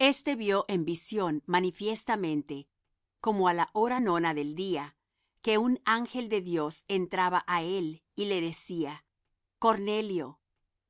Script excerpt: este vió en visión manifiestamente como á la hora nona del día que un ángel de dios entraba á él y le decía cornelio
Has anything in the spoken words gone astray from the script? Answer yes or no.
no